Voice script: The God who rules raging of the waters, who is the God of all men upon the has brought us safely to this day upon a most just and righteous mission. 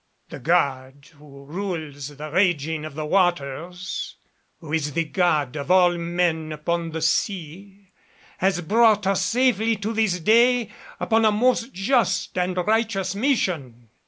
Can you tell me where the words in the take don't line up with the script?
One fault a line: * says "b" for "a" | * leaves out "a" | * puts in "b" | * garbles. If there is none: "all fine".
* puts in "the"
* puts in "sea"